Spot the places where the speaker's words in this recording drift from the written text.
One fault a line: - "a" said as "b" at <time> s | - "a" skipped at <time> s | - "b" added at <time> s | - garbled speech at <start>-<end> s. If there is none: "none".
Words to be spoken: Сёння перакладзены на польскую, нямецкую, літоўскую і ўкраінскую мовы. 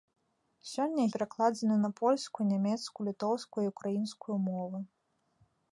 none